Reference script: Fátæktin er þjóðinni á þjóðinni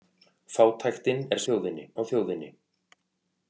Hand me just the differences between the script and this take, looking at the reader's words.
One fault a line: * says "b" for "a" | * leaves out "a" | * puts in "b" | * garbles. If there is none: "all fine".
all fine